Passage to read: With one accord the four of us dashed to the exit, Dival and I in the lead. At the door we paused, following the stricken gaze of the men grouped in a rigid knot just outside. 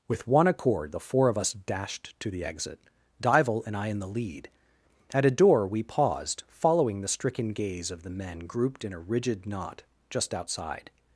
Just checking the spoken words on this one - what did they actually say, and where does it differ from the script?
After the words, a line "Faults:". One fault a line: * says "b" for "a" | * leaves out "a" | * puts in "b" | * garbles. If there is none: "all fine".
With one accord the four of us dashed to the exit, Dival and I in the lead. At a door we paused, following the stricken gaze of the men grouped in a rigid knot just outside.
Faults:
* says "a" for "the"